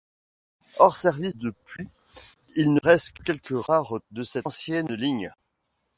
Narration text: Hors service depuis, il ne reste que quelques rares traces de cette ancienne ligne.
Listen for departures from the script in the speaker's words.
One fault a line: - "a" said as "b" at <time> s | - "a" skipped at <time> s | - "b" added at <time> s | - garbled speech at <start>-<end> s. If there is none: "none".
- "traces" skipped at 4.0 s